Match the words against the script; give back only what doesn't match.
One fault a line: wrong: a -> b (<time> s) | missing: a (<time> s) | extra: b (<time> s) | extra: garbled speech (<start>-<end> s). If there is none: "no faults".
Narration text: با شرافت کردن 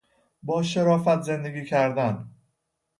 extra: زندگی (1.2 s)